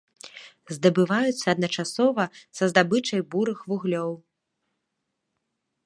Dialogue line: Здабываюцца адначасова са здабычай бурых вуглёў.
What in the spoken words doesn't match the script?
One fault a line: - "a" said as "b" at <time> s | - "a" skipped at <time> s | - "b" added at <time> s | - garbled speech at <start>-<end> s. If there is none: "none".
none